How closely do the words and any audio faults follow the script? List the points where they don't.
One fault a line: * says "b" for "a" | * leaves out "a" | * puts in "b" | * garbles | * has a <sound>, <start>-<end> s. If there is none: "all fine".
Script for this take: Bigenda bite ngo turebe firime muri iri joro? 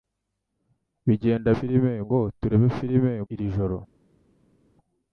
* says "firime" for "bite"
* leaves out "muri"